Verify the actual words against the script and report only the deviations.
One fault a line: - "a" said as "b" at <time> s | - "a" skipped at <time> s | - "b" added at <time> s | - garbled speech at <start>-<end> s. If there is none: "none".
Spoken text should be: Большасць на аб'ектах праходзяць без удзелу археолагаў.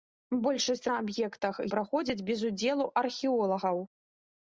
none